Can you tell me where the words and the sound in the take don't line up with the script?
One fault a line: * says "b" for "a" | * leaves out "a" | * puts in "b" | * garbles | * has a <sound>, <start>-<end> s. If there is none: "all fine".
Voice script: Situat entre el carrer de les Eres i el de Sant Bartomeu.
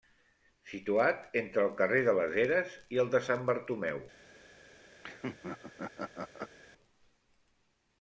* has a laugh, 5.0-6.6 s